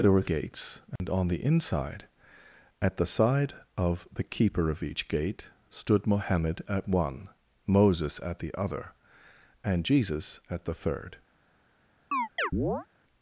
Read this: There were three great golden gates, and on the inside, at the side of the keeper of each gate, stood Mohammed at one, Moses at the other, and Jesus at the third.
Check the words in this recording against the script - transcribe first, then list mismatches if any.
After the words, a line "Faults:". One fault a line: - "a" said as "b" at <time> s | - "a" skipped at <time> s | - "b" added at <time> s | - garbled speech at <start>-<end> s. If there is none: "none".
There were gates, and on the inside, at the side of the keeper of each gate, stood Mohammed at one, Moses at the other, and Jesus at the third.
Faults:
- "three great golden" skipped at 0.3 s